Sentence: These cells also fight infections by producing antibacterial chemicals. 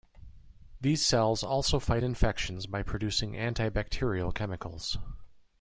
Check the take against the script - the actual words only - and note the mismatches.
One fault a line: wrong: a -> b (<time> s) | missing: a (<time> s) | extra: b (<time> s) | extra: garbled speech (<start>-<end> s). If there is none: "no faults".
no faults